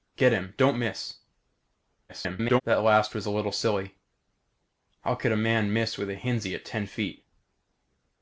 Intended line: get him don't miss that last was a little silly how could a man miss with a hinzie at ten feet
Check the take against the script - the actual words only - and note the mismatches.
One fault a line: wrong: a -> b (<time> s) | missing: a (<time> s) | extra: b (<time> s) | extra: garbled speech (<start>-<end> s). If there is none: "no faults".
extra: garbled speech (2.1-2.6 s)